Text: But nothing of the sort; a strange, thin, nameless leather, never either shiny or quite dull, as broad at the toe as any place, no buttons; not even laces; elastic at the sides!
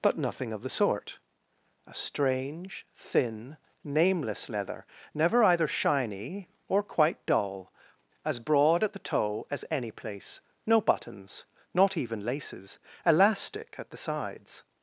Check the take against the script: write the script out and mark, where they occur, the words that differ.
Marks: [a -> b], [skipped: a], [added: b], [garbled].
But nothing of the sort; a strange, thin, nameless leather, never either shiny or quite dull, as broad at the toe as any place, no buttons; not even laces; elastic at the sides!